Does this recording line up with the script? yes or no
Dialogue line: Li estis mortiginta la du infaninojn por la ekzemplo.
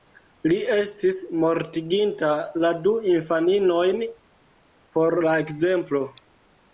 yes